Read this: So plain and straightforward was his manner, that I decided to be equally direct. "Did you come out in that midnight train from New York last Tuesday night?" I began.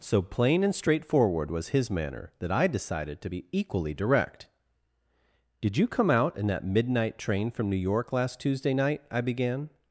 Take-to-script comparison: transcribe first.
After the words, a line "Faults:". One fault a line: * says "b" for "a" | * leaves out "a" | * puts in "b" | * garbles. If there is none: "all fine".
So plain and straightforward was his manner, that I decided to be equally direct. "Did you come out in that midnight train from New York last Tuesday night?" I began.
Faults:
all fine